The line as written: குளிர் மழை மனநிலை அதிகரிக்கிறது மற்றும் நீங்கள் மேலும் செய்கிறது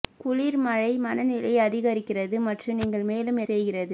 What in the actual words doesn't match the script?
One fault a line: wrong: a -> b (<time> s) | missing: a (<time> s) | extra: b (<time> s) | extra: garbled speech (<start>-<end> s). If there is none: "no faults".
no faults